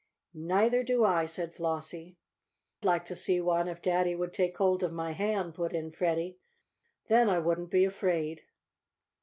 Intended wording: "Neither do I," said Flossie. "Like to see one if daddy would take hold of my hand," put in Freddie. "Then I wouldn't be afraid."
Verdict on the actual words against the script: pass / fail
pass